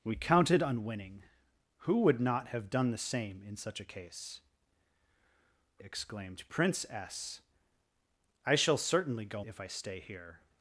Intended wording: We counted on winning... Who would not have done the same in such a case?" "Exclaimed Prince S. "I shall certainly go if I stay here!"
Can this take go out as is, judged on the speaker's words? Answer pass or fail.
pass